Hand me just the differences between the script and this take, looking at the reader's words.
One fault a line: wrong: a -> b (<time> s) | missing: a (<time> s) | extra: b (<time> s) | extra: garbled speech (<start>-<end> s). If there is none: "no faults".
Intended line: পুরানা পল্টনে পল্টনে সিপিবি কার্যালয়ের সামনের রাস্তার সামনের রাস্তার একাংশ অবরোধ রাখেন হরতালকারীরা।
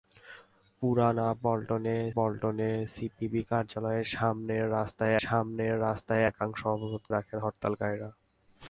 no faults